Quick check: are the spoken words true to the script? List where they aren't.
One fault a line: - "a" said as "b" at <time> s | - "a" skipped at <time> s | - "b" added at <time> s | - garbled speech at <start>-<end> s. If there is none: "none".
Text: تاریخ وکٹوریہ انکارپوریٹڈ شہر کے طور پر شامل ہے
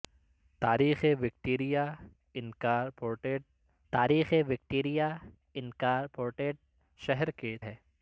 - "شہر کے طور پر شامل" said as "تاریخ وکٹوریہ انکارپوریٹڈ شہر کے" at 3.9 s